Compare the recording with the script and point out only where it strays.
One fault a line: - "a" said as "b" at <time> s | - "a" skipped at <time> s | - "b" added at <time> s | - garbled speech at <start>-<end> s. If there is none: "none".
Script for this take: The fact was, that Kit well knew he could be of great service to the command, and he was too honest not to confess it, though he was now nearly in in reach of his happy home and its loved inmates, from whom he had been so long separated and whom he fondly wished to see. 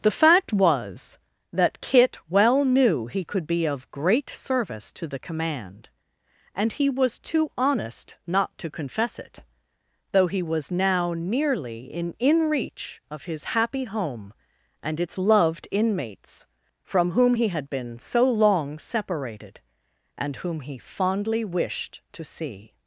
none